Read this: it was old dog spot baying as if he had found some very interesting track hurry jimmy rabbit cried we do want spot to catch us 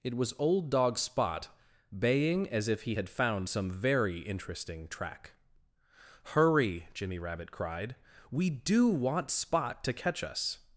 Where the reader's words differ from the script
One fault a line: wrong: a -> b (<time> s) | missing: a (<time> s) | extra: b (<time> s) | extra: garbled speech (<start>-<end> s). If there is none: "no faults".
no faults